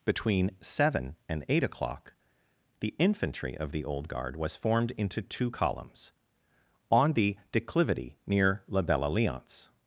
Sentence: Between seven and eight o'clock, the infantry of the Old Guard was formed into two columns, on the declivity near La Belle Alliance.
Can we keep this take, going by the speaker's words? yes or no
yes